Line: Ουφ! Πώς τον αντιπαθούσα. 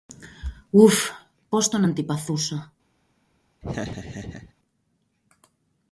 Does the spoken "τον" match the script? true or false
true